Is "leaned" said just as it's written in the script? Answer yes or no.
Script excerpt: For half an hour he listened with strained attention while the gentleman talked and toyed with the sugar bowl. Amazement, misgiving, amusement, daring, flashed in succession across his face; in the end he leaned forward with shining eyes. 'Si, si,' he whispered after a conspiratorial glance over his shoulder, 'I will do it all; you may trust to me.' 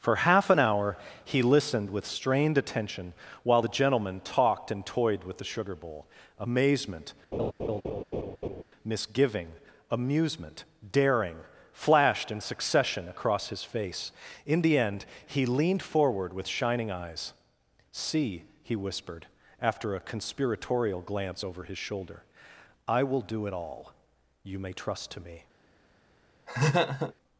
yes